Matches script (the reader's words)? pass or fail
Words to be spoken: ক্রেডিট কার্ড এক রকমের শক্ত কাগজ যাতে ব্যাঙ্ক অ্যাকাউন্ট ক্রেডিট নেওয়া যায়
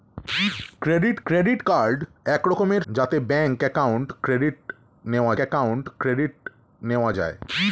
fail